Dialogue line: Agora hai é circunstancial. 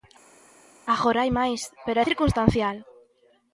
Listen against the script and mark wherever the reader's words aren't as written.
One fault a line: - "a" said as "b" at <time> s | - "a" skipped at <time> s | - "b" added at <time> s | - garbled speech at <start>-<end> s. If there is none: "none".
- "máis pero" added at 1.4 s